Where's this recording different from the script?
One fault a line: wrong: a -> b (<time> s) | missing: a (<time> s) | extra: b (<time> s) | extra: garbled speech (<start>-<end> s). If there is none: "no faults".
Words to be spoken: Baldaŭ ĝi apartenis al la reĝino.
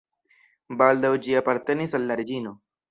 no faults